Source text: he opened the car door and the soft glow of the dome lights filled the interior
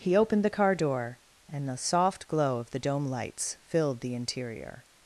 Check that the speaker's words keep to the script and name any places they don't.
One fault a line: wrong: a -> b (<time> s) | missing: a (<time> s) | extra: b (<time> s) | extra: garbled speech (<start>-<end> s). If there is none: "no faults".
no faults